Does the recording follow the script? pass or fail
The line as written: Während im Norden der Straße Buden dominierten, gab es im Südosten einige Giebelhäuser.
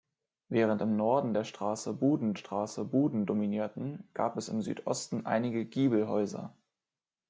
fail